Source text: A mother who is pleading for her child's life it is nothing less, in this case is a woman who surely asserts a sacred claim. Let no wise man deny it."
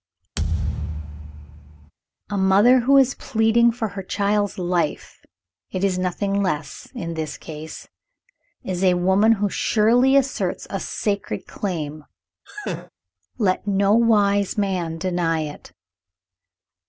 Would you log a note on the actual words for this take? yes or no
no